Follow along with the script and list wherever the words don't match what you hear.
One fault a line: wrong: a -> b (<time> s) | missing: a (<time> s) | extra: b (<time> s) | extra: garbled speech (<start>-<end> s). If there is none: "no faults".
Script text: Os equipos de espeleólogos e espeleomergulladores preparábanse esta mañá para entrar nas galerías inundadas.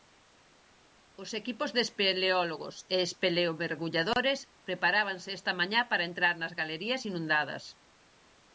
no faults